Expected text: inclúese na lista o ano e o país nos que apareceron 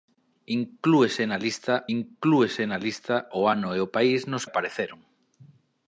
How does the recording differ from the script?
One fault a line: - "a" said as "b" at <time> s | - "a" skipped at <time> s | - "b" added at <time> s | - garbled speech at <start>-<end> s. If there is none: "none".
- "inclúese na lista" added at 2.0 s
- "que" skipped at 4.4 s